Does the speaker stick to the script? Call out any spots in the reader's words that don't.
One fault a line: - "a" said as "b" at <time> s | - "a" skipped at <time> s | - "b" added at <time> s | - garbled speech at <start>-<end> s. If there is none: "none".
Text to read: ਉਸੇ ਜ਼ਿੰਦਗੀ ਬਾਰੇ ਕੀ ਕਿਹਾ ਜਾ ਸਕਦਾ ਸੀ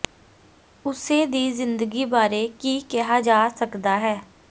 - "ਦੀ" added at 1.2 s
- "ਸੀ" said as "ਹੈ" at 4.0 s